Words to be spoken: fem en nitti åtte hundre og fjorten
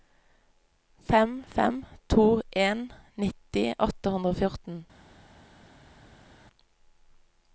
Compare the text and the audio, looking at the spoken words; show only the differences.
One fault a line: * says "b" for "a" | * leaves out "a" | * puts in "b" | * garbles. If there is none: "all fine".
* puts in "fem to"